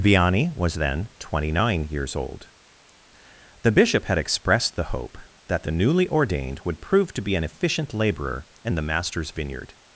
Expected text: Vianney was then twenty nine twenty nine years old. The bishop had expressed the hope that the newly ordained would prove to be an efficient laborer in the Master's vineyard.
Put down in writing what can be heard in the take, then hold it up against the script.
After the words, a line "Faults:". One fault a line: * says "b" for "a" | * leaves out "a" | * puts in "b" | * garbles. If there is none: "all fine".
Vianney was then twenty nine years old. The bishop had expressed the hope that the newly ordained would prove to be an efficient laborer in the Master's vineyard.
Faults:
* leaves out "twenty nine"